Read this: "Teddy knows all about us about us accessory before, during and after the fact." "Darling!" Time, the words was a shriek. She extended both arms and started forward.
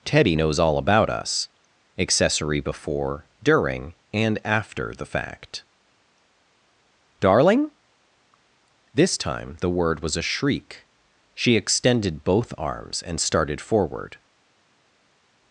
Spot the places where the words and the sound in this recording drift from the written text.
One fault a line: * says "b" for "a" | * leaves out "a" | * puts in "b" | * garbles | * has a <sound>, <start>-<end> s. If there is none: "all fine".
* leaves out "about us"
* puts in "This"
* says "word" for "words"